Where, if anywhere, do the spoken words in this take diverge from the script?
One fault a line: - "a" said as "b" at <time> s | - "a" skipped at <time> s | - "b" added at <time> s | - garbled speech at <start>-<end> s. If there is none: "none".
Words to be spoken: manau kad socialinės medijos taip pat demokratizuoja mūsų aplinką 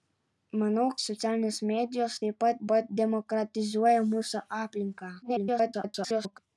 - "kad" skipped at 0.8 s
- "pat" added at 2.7 s
- garbled speech at 5.2-6.4 s